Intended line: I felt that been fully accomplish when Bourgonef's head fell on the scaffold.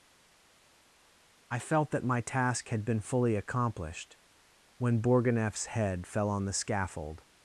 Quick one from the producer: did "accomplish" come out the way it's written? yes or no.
no